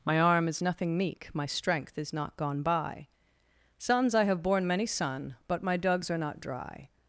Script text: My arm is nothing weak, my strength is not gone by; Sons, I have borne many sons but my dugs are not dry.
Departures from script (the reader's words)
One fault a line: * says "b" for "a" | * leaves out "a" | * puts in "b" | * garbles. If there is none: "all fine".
* says "meek" for "weak"
* says "son" for "sons"